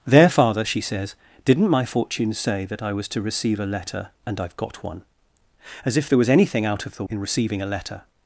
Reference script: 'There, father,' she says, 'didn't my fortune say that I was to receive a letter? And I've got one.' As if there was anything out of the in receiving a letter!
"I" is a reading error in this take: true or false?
false